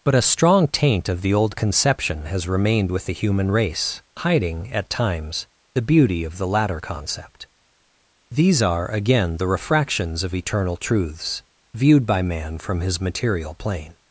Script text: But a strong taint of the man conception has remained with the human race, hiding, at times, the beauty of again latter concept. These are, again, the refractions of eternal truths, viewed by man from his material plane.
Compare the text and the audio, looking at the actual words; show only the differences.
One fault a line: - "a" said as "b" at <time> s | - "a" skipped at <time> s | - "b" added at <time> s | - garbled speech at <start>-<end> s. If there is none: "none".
- "man" said as "old" at 1.3 s
- "again" said as "the" at 6.4 s